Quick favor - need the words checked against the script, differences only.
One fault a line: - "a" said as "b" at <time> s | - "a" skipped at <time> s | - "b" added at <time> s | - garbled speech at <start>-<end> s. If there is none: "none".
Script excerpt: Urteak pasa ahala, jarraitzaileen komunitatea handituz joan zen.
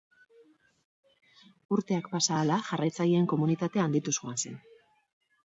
none